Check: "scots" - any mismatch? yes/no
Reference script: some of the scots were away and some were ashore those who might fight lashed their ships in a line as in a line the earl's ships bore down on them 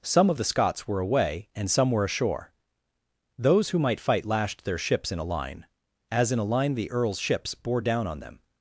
no